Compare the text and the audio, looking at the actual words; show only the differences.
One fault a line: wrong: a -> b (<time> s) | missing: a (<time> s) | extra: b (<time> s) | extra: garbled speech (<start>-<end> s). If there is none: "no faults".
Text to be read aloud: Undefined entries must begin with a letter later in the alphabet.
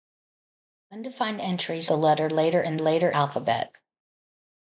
missing: must begin with (1.9 s)
wrong: the -> later (2.8 s)